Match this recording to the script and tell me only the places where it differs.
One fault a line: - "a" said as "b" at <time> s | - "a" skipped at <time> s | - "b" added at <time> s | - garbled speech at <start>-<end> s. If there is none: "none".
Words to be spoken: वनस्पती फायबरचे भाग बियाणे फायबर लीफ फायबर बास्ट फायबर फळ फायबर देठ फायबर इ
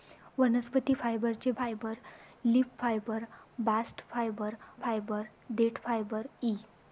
- "भाग बियाणे" skipped at 1.5 s
- "फळ" skipped at 4.5 s